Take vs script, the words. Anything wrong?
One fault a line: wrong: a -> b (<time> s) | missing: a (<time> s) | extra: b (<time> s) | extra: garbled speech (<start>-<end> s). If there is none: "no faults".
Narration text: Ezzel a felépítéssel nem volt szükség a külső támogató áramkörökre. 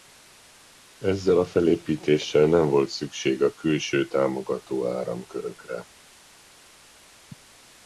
no faults